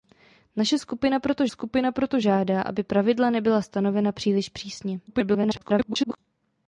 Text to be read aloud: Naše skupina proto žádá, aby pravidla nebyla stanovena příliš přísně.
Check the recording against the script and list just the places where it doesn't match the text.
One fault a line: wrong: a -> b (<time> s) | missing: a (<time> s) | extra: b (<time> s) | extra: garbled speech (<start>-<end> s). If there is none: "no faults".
extra: skupina proto (1.5 s)
extra: garbled speech (5.1-6.2 s)